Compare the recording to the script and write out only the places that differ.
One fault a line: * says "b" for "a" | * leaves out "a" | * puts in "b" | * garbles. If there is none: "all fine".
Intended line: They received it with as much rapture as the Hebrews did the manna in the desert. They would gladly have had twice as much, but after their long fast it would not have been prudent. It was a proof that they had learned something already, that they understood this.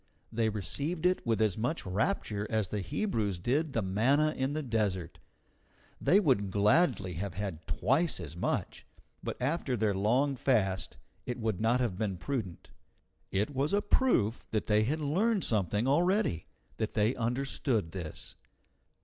all fine